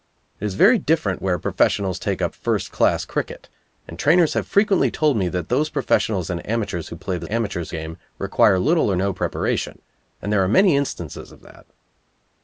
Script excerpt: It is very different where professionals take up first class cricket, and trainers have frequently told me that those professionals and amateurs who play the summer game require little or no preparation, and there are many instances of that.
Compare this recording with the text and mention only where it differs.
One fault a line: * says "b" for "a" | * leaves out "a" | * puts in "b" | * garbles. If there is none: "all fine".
* says "amateurs" for "summer"